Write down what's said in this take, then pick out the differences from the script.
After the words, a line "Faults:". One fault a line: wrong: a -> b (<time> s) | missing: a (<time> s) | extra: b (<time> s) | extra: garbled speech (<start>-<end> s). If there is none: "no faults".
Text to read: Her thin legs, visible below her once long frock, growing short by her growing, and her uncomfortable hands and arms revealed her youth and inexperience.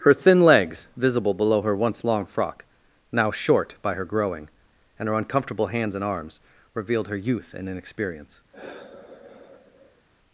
Her thin legs, visible below her once long frock, now short by her growing, and her uncomfortable hands and arms revealed her youth and inexperience.
Faults:
wrong: growing -> now (3.1 s)